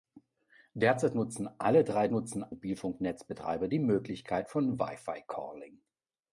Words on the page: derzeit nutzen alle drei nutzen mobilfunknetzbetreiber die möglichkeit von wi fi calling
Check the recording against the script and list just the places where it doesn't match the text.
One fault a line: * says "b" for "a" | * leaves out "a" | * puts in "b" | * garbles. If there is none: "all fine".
all fine